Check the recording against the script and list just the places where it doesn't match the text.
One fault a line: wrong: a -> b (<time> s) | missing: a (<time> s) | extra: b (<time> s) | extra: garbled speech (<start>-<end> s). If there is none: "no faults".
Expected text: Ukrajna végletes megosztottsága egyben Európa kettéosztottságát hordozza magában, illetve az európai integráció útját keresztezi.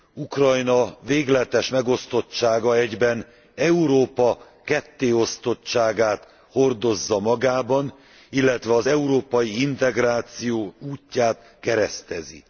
no faults